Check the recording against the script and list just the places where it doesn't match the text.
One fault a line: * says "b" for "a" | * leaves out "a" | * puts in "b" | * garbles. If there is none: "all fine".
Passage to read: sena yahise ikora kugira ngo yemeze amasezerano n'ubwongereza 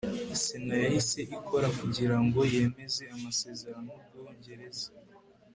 all fine